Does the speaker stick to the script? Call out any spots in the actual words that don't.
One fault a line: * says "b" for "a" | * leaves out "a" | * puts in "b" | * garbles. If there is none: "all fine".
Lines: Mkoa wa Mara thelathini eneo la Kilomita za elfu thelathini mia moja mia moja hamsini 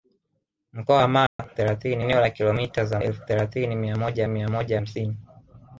all fine